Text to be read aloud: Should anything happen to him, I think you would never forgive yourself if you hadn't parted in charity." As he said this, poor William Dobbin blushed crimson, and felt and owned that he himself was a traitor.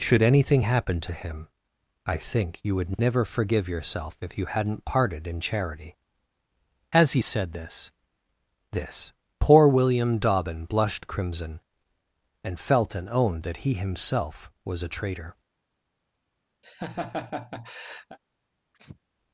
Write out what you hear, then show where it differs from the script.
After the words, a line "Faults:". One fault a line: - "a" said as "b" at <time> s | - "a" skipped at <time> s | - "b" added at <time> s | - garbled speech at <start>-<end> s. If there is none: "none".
Should anything happen to him, I think you would never forgive yourself if you hadn't parted in charity." As he said this this, poor William Dobbin blushed crimson, and felt and owned that he himself was a traitor.
Faults:
- "this" added at 8.7 s